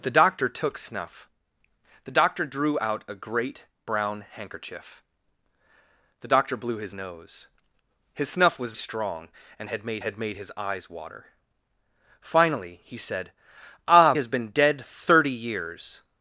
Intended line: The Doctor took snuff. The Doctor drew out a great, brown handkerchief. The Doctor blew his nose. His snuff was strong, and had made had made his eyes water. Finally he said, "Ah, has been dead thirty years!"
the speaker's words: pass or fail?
pass